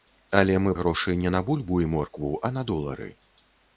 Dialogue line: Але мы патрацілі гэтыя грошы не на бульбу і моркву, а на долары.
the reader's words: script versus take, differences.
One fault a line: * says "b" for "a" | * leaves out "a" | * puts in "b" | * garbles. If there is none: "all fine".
* leaves out "патрацілі гэтыя"